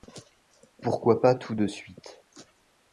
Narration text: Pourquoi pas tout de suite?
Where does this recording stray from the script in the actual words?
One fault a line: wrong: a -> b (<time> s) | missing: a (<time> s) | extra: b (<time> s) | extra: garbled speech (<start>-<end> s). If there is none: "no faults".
no faults